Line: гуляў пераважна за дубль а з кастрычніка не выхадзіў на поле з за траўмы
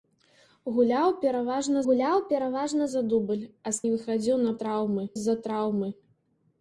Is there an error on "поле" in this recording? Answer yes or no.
yes